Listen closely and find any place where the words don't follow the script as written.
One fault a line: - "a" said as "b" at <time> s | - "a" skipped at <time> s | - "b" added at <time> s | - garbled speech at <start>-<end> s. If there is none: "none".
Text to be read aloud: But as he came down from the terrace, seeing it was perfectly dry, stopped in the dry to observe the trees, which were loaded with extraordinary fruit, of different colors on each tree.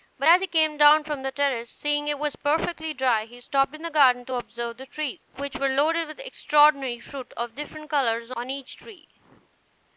- "he" added at 3.2 s
- "dry" said as "garden" at 3.9 s